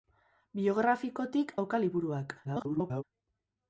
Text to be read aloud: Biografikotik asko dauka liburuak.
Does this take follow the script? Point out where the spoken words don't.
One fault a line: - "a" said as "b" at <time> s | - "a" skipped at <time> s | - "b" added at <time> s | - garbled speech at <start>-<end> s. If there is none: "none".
- "asko" skipped at 1.6 s
- garbled speech at 2.4-3.0 s